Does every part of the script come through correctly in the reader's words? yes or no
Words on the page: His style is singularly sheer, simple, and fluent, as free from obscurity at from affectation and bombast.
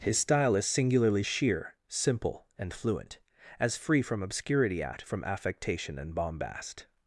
yes